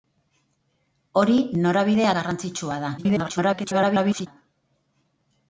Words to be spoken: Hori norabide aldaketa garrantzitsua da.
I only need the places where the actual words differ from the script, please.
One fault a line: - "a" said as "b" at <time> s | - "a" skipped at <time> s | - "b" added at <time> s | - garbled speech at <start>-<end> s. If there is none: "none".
- "aldaketa" skipped at 2.1 s
- garbled speech at 3.0-4.3 s